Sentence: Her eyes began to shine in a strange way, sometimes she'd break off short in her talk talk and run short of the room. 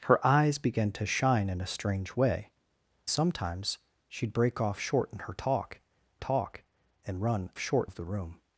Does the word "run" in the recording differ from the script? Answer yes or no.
no